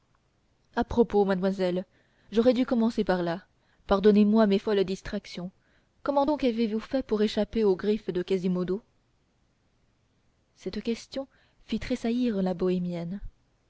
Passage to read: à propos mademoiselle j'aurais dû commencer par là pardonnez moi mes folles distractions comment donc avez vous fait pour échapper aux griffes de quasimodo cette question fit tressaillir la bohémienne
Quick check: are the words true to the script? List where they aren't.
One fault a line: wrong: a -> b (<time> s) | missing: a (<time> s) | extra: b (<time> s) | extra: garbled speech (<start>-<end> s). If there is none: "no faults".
no faults